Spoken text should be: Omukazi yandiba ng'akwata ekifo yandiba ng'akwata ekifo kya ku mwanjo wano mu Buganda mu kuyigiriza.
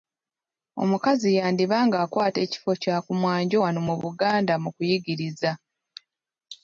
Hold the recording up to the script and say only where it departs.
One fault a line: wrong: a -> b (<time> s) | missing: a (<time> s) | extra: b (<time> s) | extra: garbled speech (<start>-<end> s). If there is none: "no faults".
missing: yandiba ng'akwata ekifo (2.7 s)